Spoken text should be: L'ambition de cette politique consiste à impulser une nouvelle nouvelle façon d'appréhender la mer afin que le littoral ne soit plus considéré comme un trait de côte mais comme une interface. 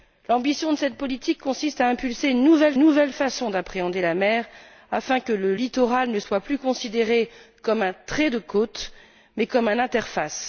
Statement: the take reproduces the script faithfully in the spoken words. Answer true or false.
true